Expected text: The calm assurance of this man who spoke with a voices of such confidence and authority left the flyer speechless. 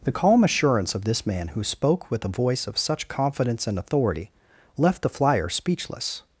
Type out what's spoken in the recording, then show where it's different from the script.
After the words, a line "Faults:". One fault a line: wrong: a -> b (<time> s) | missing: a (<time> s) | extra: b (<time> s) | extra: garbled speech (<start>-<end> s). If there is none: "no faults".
The calm assurance of this man who spoke with a voice of such confidence and authority left the flyer speechless.
Faults:
wrong: voices -> voice (2.3 s)